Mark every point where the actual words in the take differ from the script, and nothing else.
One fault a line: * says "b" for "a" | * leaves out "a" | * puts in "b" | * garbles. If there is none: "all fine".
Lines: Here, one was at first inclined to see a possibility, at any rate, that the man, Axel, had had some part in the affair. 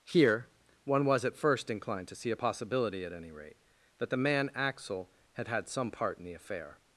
all fine